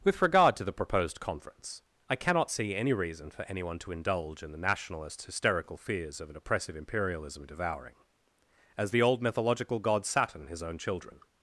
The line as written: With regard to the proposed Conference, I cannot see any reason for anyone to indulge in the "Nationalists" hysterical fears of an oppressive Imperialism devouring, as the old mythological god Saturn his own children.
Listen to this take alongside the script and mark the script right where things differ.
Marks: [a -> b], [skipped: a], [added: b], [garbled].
With regard to the proposed Conference, I cannot see any reason for anyone to indulge in the ["Nationalists" -> Nationalist] hysterical fears of an oppressive Imperialism devouring, as the old mythological god Saturn his own children.